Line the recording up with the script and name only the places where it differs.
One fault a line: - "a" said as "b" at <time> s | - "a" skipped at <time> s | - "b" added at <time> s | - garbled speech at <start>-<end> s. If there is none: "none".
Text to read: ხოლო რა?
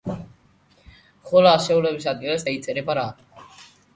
- "ასეულების ადგილას დაიწერება" added at 1.5 s